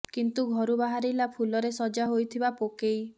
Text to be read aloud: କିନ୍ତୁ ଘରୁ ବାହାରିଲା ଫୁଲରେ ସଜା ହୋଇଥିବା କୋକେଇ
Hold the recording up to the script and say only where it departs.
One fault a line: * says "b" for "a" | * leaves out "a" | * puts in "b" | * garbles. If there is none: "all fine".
all fine